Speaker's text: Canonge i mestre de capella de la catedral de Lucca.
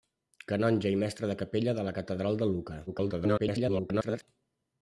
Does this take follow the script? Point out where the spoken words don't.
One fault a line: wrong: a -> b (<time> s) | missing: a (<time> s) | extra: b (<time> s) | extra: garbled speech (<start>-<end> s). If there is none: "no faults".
extra: garbled speech (2.9-4.2 s)